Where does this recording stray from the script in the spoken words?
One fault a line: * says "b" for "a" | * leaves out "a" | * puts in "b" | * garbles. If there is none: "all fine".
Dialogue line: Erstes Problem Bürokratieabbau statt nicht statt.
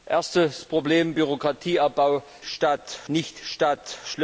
all fine